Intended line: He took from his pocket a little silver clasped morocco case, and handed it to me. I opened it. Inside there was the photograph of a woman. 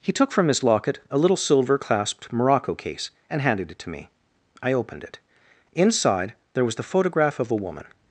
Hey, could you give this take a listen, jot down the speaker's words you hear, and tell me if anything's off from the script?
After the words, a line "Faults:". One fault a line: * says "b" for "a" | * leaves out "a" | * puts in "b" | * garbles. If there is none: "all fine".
He took from his locket a little silver clasped morocco case, and handed it to me. I opened it. Inside there was the photograph of a woman.
Faults:
* says "locket" for "pocket"